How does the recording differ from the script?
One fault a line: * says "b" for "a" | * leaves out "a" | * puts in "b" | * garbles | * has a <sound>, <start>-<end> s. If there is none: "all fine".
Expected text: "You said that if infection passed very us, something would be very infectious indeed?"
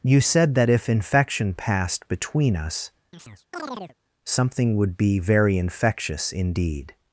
* says "between" for "very"
* has a chirp, 3.1-4.0 s